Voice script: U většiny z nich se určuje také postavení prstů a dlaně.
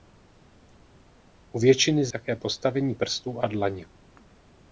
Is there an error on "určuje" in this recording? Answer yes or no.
yes